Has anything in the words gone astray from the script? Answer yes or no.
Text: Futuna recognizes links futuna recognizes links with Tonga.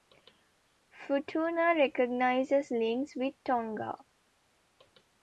yes